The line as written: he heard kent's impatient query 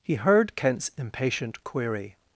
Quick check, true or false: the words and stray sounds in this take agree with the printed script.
true